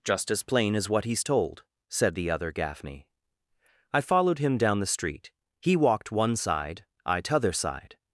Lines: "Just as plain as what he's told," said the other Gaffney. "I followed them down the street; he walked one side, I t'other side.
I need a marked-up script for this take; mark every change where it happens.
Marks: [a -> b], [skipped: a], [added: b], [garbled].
"Just as plain as what he's told," said the other Gaffney. "I followed [them -> him] down the street; he walked one side, I t'other side.